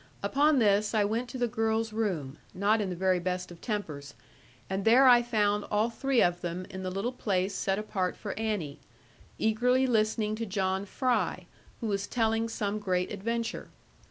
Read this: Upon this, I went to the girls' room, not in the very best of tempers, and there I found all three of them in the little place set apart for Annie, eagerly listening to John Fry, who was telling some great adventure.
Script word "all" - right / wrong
right